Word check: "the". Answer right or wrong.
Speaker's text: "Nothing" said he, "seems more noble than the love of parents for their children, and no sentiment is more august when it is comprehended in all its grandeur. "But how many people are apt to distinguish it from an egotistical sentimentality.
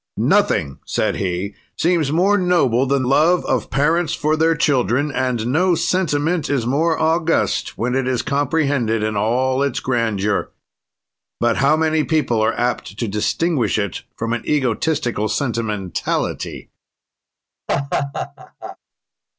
wrong